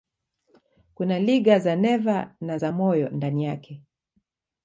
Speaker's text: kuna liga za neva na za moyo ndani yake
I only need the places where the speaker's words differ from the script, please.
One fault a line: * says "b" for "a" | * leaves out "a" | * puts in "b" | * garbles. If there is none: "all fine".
all fine